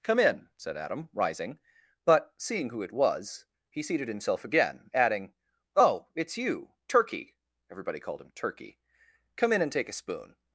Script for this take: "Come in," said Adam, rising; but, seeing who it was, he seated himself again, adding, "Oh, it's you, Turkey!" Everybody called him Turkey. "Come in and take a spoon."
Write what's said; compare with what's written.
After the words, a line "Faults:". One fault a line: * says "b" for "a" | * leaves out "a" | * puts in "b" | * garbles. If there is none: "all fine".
"Come in," said Adam, rising; but, seeing who it was, he seated himself again, adding, "Oh, it's you, Turkey!" Everybody called him Turkey. "Come in and take a spoon."
Faults:
all fine